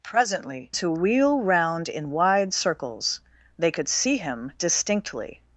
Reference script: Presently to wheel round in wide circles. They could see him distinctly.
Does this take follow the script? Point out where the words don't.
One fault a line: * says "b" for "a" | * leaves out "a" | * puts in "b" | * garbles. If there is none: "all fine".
all fine